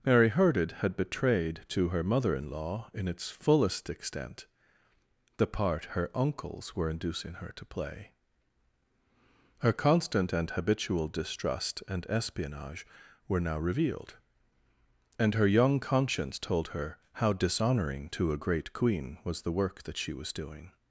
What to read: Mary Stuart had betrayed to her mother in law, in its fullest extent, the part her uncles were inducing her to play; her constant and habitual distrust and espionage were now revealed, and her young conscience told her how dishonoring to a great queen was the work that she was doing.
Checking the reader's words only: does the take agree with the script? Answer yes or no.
no